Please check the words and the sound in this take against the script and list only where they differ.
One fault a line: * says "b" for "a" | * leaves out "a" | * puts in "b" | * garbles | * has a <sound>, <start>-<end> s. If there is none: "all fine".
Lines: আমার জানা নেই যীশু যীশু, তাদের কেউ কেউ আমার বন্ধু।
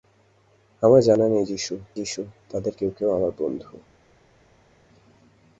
all fine